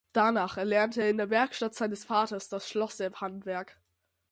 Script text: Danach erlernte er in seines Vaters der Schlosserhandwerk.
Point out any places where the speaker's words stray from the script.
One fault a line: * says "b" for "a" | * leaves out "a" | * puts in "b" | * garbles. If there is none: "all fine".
* puts in "der Werkstatt"
* says "das" for "der"